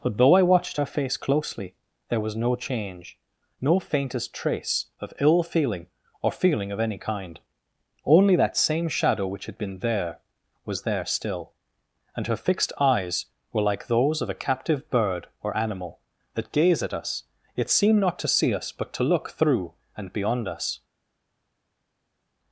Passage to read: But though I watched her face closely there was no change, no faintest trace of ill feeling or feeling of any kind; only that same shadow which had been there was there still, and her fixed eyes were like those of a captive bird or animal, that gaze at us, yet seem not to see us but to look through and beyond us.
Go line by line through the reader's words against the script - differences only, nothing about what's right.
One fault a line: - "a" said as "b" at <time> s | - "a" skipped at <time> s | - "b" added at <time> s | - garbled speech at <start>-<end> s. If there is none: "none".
none